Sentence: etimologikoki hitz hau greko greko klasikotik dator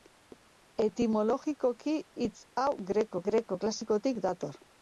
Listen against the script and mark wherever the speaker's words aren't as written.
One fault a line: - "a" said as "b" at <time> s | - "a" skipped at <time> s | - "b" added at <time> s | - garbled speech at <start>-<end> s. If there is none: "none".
none